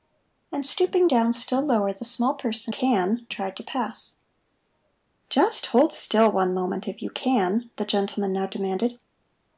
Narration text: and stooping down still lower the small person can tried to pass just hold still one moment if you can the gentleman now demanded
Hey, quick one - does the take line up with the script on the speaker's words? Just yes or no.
yes